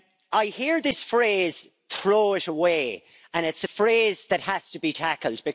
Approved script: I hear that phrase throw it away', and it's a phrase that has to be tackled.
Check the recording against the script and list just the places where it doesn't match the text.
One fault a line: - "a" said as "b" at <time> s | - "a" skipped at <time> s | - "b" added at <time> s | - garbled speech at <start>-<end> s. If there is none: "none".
- "that" said as "this" at 0.8 s